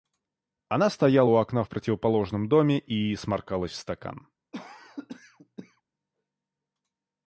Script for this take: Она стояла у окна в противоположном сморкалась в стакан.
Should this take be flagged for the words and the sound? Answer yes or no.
yes